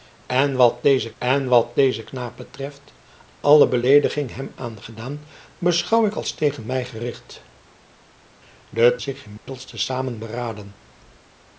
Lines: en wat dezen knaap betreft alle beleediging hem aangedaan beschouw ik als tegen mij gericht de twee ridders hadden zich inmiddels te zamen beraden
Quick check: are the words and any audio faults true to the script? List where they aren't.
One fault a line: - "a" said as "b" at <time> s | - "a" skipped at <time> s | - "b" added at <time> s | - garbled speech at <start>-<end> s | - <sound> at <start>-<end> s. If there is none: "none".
- "en wat dezen" added at 1.2 s
- "twee ridders hadden" skipped at 9.0 s
- dropout at 9.4-9.5 s